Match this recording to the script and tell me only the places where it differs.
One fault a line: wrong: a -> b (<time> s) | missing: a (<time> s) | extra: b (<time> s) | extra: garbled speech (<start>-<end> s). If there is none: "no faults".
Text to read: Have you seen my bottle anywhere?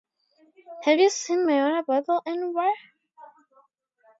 extra: water (1.7 s)